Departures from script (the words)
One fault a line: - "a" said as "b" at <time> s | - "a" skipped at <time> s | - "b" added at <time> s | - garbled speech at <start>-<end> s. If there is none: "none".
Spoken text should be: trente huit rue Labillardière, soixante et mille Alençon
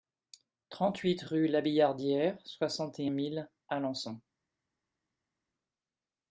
none